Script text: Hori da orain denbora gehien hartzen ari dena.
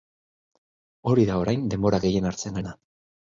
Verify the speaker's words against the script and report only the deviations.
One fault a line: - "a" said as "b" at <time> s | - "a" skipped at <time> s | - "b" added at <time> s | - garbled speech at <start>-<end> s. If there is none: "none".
- "ari" skipped at 2.6 s